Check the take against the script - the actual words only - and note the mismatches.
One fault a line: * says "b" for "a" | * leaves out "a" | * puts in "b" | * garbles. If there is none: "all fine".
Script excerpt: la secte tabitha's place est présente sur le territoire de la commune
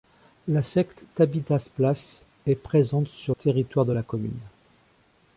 * leaves out "le"